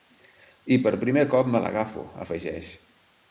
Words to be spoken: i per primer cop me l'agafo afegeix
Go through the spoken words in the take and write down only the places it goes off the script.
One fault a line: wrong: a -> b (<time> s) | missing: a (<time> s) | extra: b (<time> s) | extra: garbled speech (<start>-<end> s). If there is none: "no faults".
no faults